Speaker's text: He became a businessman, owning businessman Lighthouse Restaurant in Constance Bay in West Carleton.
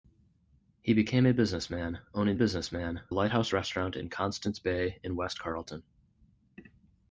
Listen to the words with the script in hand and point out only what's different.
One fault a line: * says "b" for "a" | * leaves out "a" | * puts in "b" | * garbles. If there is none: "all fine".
all fine